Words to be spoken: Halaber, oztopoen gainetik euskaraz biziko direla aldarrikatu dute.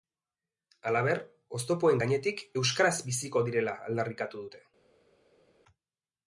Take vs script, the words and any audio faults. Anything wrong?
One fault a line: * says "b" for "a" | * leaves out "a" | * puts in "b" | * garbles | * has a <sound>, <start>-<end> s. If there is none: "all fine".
all fine